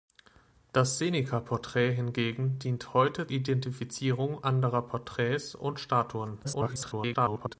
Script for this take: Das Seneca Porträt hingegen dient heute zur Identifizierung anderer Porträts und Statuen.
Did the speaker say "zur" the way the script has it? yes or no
no